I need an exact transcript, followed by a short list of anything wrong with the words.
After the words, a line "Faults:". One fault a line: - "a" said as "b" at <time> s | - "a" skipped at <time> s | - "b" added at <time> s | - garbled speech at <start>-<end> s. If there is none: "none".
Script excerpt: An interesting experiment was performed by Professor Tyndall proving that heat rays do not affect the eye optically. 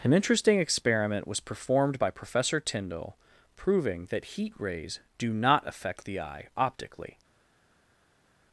An interesting experiment was performed by Professor Tyndall proving that heat rays do not affect the eye optically.
Faults:
none